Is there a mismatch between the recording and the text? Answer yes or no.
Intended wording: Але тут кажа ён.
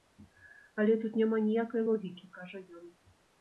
yes